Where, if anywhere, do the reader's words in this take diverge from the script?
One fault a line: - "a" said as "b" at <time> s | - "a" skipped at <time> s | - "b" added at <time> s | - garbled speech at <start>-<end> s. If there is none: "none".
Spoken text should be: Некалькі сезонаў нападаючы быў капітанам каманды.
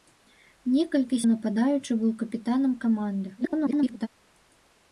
- "сезонаў" skipped at 1.2 s
- garbled speech at 3.4-4.1 s